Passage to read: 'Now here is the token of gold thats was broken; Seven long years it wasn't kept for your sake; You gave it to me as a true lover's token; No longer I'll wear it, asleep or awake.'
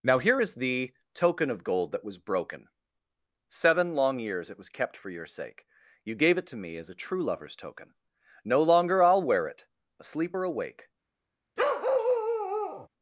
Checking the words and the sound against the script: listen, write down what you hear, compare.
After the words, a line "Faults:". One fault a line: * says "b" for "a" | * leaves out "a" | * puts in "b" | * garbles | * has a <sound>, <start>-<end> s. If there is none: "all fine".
'Now here is the token of gold that was broken; Seven long years it was kept for your sake; You gave it to me as a true lover's token; No longer I'll wear it, asleep or awake.'
Faults:
* says "that" for "thats"
* says "was" for "wasn't"
* has a bark, 11.6-12.9 s